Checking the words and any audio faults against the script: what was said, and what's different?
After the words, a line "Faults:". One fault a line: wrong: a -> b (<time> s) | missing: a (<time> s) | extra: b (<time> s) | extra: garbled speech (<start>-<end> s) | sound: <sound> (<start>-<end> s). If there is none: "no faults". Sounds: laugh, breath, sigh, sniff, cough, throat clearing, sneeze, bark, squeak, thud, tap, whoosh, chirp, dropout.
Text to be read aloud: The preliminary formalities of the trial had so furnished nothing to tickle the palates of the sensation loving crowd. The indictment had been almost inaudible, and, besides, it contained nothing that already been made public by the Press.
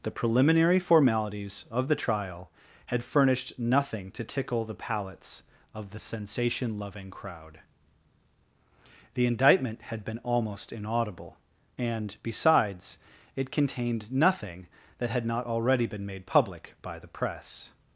The preliminary formalities of the trial had furnished nothing to tickle the palates of the sensation loving crowd. The indictment had been almost inaudible, and, besides, it contained nothing that had not already been made public by the Press.
Faults:
missing: so (3.0 s)
extra: had not (15.1 s)